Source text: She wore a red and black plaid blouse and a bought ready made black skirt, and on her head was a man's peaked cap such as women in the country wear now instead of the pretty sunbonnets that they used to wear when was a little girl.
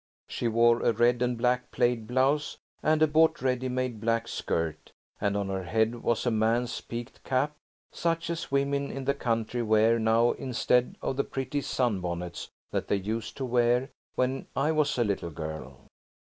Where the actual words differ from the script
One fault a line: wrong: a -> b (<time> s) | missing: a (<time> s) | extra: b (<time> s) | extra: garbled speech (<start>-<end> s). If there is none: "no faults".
extra: I (14.5 s)